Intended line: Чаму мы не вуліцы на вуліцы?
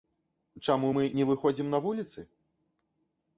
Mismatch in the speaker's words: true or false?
true